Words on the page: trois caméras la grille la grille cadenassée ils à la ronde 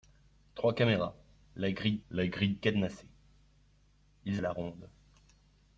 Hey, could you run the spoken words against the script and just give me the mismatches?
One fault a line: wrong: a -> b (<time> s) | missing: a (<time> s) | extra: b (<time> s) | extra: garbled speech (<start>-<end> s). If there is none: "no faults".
no faults